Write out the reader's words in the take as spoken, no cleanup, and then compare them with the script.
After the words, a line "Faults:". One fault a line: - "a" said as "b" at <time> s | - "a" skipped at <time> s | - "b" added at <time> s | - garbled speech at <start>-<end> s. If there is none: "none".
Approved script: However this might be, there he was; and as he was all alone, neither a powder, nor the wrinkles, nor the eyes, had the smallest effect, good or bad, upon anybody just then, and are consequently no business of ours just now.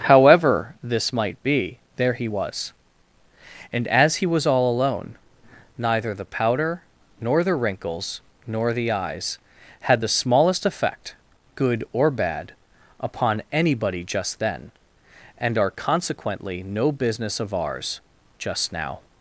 However this might be, there he was; and as he was all alone, neither the powder, nor the wrinkles, nor the eyes, had the smallest effect, good or bad, upon anybody just then, and are consequently no business of ours just now.
Faults:
- "a" said as "the" at 6.1 s